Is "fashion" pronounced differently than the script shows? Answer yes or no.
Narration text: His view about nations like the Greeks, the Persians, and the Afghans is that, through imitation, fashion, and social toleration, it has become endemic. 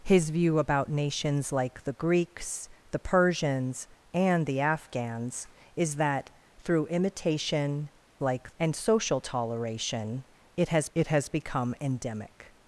yes